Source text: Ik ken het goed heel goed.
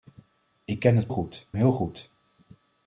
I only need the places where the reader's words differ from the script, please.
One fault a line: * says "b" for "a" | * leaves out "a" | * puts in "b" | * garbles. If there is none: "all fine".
all fine